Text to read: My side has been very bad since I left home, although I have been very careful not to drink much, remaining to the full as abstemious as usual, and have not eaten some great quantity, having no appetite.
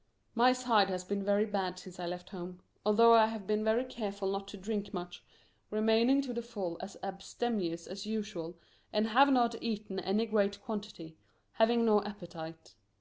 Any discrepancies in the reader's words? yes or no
yes